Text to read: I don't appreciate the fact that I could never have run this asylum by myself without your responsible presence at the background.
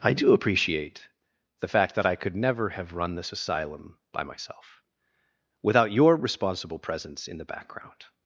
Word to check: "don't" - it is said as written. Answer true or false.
false